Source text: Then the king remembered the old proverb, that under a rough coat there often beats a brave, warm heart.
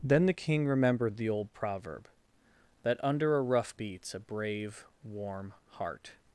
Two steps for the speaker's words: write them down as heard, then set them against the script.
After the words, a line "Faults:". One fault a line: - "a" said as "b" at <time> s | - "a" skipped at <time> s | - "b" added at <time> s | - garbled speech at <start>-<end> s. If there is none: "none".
Then the king remembered the old proverb, that under a rough beats a brave, warm heart.
Faults:
- "coat there often" skipped at 3.8 s